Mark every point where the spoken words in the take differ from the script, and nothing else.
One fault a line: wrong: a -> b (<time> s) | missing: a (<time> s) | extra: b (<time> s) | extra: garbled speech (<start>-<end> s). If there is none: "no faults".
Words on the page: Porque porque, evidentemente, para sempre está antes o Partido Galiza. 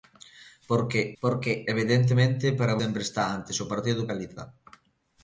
no faults